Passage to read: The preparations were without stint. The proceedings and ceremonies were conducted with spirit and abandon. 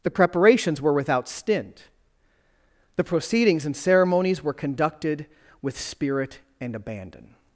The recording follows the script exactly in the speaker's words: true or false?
true